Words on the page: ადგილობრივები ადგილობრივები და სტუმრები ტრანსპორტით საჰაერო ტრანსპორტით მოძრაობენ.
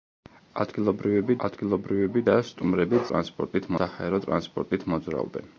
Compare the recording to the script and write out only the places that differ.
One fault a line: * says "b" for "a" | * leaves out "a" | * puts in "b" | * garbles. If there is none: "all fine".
all fine